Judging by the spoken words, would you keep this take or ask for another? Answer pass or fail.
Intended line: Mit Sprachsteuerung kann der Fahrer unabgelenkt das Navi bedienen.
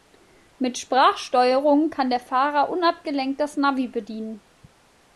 pass